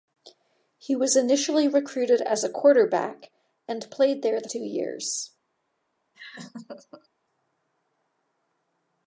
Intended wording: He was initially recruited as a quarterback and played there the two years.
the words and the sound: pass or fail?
fail